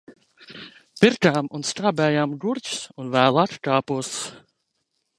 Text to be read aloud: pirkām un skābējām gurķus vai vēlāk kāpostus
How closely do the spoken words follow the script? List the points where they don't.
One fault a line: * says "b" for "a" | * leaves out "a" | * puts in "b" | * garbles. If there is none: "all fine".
* says "un" for "vai"